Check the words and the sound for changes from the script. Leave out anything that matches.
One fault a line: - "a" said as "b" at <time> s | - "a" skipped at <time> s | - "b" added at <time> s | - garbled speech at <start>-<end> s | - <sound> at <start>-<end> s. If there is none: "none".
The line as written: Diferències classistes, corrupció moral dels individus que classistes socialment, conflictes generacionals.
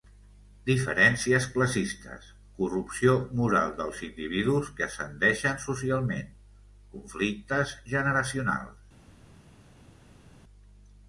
- "classistes" said as "ascendeixen" at 4.8 s